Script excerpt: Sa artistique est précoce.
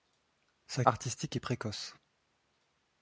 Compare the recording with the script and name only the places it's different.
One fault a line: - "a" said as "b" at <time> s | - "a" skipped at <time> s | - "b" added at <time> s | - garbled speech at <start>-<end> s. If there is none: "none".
none